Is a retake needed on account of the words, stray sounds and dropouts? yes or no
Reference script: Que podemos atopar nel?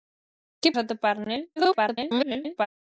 yes